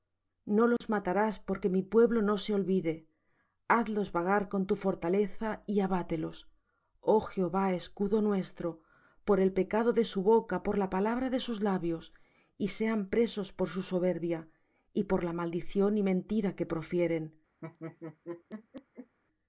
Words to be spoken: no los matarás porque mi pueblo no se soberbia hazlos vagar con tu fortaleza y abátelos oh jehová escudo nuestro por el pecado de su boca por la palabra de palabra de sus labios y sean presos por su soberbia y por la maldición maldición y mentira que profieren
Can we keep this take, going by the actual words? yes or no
no